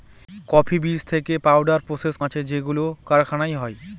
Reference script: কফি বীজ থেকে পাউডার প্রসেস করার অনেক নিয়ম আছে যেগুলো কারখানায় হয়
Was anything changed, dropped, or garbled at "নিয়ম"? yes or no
yes